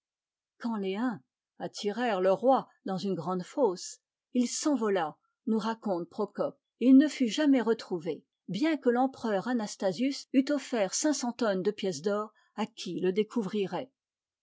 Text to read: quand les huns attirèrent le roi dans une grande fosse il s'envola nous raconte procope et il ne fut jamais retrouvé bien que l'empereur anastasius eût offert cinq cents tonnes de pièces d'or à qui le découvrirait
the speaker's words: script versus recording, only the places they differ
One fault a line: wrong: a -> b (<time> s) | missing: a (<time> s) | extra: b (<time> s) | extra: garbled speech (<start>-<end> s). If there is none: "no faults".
no faults